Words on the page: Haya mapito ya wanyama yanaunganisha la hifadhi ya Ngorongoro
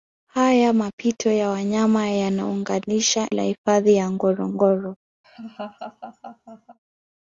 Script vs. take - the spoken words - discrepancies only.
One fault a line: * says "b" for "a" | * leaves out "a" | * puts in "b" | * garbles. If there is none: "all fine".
all fine